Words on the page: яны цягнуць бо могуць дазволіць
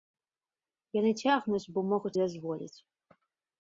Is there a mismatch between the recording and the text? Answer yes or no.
no